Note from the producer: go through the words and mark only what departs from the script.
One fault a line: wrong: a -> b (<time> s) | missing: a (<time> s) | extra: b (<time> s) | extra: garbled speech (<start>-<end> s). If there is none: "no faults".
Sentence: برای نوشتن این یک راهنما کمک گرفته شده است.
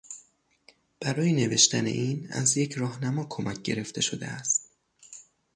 extra: از (2.3 s)